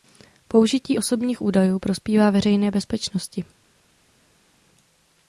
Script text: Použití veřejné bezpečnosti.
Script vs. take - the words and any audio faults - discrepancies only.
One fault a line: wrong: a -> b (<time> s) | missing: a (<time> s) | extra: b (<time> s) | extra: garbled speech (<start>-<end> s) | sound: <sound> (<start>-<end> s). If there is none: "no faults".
extra: osobních údajů prospívá (1.0 s)